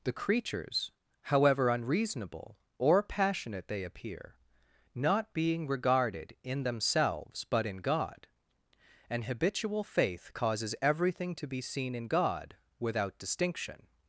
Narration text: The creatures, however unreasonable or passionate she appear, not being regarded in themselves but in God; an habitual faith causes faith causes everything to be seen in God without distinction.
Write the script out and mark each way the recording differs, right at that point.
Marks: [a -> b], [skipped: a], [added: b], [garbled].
The creatures, however unreasonable or passionate [she -> they] appear, not being regarded in themselves but in God; an habitual faith causes [skipped: faith causes] everything to be seen in God without distinction.